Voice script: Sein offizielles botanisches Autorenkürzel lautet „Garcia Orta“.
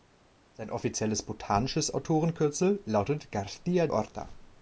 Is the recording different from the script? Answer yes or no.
no